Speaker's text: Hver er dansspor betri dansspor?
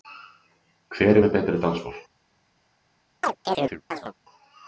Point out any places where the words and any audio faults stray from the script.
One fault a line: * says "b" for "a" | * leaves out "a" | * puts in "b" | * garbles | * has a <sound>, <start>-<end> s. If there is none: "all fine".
* says "með" for "dansspor"
* has a chirp, 3.2-4.1 s